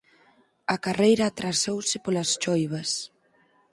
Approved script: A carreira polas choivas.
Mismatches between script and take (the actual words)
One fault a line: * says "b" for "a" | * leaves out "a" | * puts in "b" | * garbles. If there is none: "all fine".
* puts in "atrasouse"